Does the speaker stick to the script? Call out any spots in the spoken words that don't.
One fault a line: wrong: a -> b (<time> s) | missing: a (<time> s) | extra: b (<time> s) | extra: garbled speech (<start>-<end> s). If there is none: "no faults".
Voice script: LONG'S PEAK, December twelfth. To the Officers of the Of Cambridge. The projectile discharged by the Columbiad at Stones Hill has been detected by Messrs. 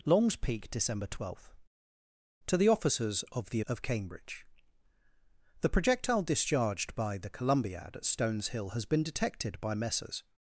no faults